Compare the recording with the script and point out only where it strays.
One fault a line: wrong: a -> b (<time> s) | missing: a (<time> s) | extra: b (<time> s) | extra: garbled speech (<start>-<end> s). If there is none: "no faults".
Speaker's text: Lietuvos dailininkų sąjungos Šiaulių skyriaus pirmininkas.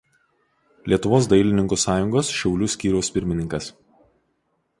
no faults